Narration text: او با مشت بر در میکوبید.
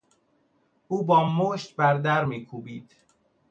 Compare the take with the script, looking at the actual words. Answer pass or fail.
pass